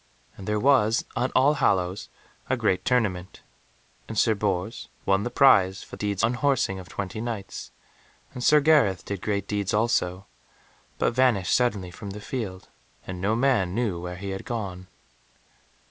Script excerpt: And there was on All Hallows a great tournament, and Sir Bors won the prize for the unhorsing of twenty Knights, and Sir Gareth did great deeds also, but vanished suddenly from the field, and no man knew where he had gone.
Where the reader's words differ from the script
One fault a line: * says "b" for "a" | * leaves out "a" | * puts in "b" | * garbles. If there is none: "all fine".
* says "deeds" for "the"